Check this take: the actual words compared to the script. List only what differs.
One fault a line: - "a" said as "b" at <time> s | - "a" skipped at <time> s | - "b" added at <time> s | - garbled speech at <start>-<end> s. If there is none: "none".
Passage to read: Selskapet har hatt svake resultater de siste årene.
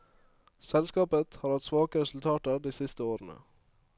none